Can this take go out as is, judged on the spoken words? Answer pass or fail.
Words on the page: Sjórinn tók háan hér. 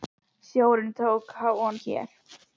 pass